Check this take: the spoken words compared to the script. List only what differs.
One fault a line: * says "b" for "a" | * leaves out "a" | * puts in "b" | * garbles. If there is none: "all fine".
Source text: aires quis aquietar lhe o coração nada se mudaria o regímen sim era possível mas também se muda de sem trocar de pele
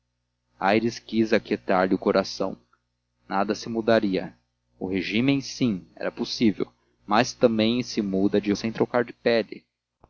all fine